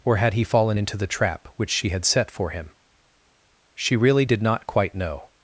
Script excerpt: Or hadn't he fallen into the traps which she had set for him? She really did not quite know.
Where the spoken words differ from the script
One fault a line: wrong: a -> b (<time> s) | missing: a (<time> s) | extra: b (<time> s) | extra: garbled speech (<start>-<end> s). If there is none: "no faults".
wrong: hadn't -> had (0.2 s)
wrong: traps -> trap (1.1 s)